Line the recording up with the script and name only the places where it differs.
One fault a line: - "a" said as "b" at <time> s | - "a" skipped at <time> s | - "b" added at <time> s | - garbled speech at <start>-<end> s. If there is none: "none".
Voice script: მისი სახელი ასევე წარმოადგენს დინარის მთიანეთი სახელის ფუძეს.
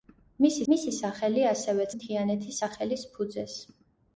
- "მისი" added at 0.7 s
- "წარმოადგენს დინარის" skipped at 1.9 s